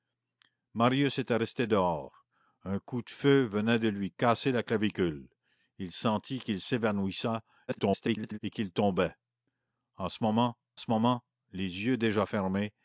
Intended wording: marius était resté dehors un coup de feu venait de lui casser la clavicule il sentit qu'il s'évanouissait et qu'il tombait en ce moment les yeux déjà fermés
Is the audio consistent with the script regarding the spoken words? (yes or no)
no